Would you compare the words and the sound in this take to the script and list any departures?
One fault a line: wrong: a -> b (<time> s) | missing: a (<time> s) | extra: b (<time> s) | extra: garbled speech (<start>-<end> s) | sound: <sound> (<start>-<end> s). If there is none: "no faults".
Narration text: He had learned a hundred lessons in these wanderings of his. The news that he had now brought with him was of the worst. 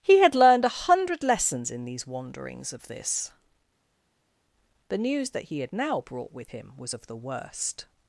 wrong: his -> this (2.9 s)